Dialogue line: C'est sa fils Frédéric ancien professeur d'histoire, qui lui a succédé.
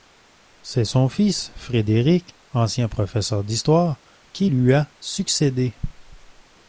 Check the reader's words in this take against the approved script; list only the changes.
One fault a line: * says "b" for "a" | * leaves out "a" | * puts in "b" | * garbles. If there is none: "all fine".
* says "son" for "sa"